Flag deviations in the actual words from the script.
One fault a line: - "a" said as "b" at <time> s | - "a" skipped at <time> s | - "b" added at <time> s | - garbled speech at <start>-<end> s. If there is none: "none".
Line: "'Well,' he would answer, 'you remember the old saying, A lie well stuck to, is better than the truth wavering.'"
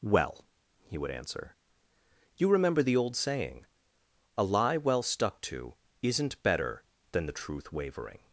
- "is" said as "isn't" at 6.0 s